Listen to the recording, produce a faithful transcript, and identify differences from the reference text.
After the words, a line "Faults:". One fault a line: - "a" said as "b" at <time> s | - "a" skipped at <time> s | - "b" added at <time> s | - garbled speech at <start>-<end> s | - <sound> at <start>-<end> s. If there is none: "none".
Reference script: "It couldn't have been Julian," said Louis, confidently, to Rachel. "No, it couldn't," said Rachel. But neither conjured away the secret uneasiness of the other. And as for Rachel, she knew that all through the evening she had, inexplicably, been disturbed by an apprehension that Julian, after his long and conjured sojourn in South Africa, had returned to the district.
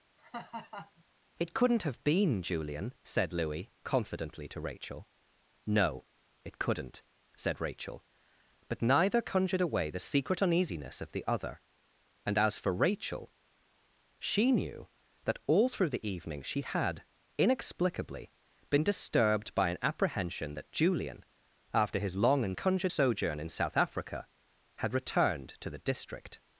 "It couldn't have been Julian," said Louis, confidently, to Rachel. "No, it couldn't," said Rachel. But neither conjured away the secret uneasiness of the other. And as for Rachel, she knew that all through the evening she had, inexplicably, been disturbed by an apprehension that Julian, after his long and conjured sojourn in South Africa, had returned to the district.
Faults:
- laugh at 0.2-1.0 s